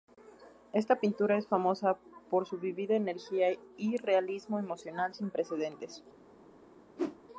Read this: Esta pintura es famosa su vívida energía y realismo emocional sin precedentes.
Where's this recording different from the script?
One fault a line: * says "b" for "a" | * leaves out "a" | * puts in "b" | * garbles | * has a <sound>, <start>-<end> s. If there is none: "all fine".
* puts in "por"
* has a whoosh, 7.0-7.2 s